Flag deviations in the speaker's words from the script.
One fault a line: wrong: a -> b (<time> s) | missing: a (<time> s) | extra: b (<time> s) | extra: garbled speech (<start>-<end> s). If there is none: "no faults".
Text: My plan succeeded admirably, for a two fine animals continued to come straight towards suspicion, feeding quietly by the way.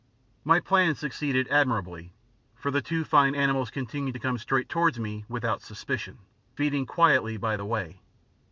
wrong: a -> the (2.7 s)
extra: me without (5.0 s)